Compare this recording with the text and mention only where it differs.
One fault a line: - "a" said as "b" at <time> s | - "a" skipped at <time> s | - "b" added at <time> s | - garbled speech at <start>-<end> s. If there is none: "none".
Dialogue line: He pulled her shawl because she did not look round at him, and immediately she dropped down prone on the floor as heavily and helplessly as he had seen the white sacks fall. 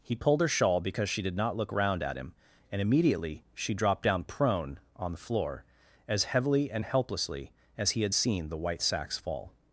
none